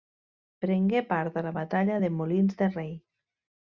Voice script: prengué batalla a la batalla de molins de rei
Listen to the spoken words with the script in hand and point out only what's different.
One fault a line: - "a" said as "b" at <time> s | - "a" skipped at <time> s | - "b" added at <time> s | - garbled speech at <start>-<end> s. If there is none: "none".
- "batalla" said as "part" at 1.1 s